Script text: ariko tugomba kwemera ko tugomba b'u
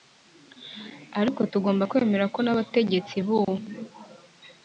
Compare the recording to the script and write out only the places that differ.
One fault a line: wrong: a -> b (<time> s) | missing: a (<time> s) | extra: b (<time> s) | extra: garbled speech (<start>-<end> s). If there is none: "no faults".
wrong: tugomba -> n'abategetsi (2.4 s)